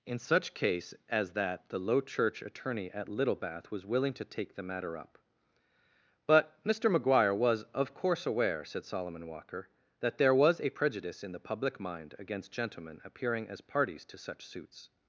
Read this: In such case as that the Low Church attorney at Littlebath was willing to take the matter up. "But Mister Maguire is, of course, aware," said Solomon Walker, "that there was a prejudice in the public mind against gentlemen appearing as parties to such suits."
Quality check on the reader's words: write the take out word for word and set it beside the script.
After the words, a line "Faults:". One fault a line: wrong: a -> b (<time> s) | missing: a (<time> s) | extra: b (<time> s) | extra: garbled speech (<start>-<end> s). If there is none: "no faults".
In such case as that the Low Church attorney at Littlebath was willing to take the matter up. "But Mister Maguire was, of course, aware," said Solomon Walker, "that there was a prejudice in the public mind against gentlemen appearing as parties to such suits."
Faults:
wrong: is -> was (7.3 s)